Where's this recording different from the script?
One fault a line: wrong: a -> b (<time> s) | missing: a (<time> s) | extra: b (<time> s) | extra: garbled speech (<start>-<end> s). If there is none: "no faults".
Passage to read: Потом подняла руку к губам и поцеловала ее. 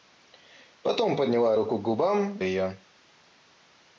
missing: и поцеловала (2.4 s)